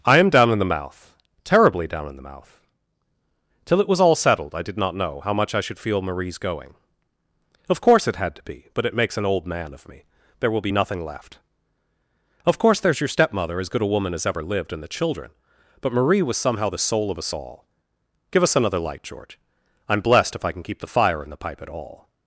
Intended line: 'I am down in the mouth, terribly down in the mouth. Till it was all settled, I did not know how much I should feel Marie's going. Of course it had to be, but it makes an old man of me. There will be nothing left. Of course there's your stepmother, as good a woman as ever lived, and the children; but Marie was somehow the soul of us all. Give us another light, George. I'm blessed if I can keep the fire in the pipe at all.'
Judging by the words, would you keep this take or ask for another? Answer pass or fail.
pass